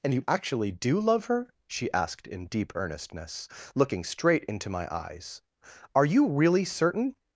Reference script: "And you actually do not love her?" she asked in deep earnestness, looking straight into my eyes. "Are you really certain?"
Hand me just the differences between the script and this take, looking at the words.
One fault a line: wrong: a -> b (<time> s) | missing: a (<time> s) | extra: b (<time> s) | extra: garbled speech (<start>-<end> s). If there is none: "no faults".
missing: not (1.0 s)